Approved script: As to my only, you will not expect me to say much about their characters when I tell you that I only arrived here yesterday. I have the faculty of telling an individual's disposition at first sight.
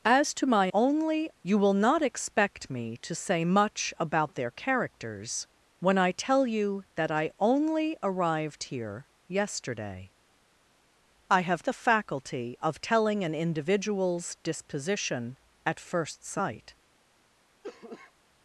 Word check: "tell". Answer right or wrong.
right